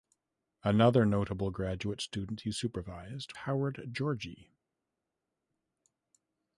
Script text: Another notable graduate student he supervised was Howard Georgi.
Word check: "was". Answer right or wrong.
wrong